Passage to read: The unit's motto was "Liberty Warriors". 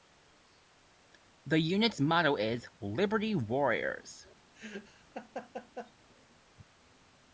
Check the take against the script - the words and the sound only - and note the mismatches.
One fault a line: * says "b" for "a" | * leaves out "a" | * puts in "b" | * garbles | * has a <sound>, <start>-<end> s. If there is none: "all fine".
* says "is" for "was"
* has a laugh, 4.5-5.9 s